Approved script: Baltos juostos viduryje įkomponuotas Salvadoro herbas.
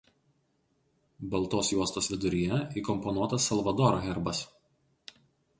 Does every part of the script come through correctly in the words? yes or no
yes